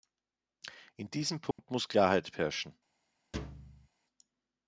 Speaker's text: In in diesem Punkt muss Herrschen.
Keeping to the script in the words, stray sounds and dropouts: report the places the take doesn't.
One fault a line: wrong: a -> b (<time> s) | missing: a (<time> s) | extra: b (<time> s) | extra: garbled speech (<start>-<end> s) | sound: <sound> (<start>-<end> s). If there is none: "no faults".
missing: in (1.1 s)
sound: dropout (1.5-1.6 s)
extra: Klarheit (1.9 s)
sound: thud (3.3-3.9 s)